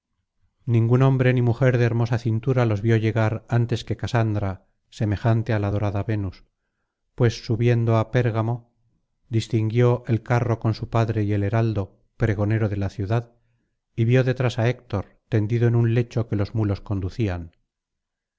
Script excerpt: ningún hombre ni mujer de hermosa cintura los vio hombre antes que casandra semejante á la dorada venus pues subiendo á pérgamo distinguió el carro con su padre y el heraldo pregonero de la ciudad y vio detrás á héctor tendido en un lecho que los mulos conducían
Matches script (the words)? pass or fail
fail